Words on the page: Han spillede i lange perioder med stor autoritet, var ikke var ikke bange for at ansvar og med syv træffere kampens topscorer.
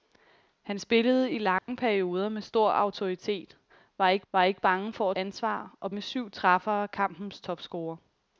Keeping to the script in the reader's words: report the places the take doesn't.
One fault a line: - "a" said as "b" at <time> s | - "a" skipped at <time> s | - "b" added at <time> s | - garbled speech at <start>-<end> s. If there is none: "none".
none